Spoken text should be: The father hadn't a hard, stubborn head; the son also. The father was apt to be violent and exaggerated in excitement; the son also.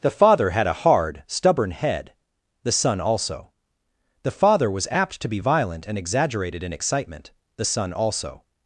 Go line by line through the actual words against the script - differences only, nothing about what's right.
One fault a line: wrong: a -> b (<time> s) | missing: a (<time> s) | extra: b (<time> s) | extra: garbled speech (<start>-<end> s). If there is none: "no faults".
wrong: hadn't -> had (0.5 s)